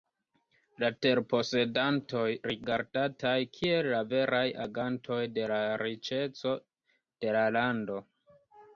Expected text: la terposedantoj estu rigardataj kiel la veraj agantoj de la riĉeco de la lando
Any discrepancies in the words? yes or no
yes